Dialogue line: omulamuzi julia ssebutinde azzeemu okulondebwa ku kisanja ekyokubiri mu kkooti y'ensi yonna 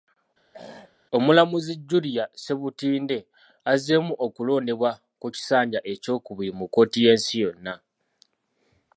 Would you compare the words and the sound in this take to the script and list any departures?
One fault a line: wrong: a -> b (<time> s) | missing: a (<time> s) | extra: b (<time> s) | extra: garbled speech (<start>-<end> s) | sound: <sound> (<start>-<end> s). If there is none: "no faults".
sound: throat clearing (0.5-1.0 s)